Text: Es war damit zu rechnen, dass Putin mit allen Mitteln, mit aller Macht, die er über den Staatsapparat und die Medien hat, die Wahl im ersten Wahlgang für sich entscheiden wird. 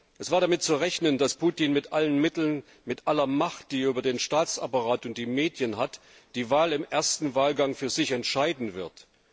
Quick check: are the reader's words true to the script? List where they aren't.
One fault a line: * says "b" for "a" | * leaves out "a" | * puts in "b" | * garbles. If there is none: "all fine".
all fine